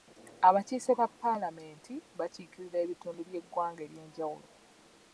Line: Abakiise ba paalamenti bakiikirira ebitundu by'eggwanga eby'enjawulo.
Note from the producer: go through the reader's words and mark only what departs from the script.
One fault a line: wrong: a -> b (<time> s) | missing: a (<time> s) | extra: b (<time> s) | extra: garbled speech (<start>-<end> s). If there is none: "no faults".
no faults